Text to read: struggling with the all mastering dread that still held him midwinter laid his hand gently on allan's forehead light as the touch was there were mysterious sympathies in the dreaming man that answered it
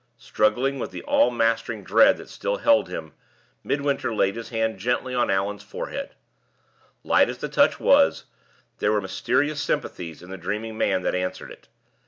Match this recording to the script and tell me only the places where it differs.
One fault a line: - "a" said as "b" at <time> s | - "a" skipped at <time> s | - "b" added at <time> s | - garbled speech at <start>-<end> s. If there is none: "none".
none